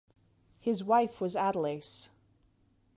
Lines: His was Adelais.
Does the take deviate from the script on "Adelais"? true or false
false